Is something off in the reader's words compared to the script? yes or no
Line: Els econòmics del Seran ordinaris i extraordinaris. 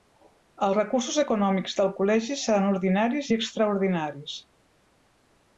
yes